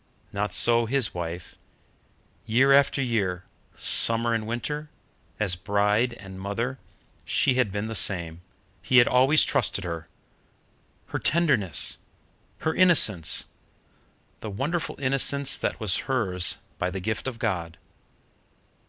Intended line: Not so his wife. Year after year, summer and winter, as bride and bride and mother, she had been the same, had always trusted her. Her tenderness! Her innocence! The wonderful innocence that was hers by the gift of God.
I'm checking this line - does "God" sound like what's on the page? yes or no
yes